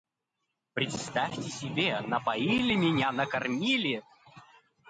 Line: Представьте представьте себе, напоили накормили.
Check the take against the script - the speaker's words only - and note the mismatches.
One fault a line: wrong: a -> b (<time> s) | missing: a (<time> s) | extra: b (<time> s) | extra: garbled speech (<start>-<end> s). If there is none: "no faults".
missing: представьте (1.4 s)
extra: меня (2.7 s)